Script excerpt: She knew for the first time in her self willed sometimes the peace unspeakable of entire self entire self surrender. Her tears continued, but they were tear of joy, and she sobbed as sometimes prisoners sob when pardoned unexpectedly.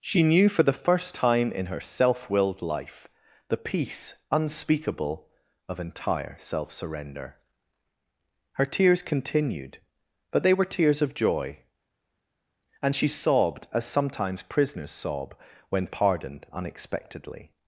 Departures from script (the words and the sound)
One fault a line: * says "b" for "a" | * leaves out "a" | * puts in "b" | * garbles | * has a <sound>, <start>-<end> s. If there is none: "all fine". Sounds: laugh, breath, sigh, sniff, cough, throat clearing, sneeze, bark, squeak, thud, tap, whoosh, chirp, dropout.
* says "life" for "sometimes"
* leaves out "entire self"
* says "tears" for "tear"